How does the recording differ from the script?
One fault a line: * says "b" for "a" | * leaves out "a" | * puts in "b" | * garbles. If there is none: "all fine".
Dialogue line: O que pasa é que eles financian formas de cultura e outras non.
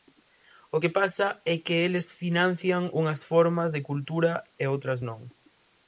* puts in "unhas"